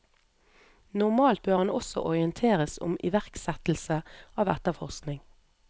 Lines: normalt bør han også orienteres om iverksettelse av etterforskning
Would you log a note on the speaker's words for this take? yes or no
no